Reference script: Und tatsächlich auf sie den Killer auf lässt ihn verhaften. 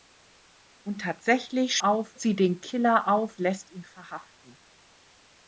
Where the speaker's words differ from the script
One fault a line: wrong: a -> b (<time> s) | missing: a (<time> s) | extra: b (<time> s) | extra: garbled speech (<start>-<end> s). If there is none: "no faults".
no faults